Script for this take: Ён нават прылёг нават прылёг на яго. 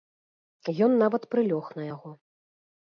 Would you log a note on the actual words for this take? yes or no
yes